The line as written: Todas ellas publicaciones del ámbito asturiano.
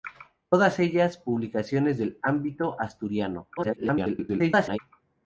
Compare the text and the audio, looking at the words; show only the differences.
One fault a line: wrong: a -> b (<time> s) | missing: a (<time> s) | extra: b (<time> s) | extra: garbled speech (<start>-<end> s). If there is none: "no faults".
extra: garbled speech (3.6-4.8 s)